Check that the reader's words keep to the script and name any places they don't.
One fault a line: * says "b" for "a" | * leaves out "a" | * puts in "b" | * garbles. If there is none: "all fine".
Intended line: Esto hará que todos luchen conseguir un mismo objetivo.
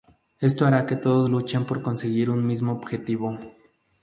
* puts in "por"